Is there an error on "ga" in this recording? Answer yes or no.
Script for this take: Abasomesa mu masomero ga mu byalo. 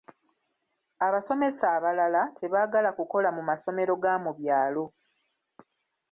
no